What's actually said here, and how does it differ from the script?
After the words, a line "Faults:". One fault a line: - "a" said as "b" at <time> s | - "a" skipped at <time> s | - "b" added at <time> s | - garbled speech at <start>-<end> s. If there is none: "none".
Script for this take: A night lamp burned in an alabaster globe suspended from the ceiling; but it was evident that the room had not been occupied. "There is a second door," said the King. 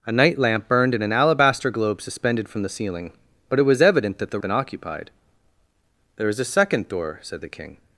A night lamp burned in an alabaster globe suspended from the ceiling; but it was evident that the been occupied. "There is a second door," said the King.
Faults:
- "room had not" skipped at 4.4 s